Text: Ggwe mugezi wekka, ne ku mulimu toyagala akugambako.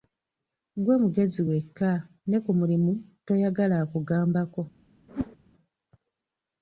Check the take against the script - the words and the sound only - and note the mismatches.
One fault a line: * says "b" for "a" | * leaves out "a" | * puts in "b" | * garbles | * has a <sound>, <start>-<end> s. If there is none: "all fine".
* has a whoosh, 5.1-5.4 s